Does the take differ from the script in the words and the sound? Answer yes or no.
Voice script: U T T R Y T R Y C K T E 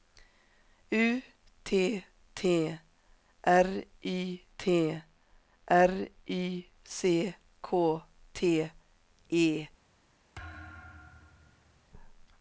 yes